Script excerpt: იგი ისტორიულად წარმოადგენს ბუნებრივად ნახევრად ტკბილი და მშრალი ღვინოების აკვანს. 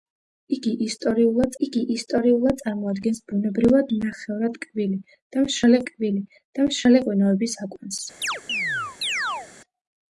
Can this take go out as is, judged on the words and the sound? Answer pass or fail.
fail